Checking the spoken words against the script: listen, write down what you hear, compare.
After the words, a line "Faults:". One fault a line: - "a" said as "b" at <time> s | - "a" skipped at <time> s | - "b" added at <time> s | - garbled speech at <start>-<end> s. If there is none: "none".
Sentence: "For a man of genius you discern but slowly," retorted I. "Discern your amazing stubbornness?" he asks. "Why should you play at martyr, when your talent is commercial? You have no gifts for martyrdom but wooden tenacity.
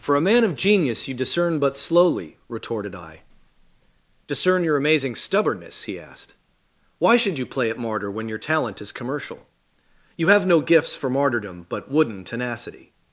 "For a man of genius you discern but slowly," retorted I. "Discern your amazing stubbornness?" he asked. "Why should you play at martyr, when your talent is commercial? You have no gifts for martyrdom but wooden tenacity.
Faults:
- "asks" said as "asked" at 6.0 s